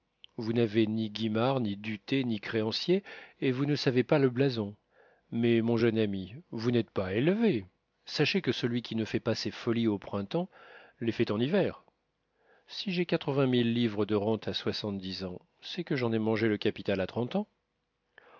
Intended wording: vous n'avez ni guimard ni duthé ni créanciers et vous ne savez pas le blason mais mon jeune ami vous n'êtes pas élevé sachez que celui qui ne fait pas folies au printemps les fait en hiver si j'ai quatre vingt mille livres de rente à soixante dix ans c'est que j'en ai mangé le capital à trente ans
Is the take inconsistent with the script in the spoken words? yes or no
yes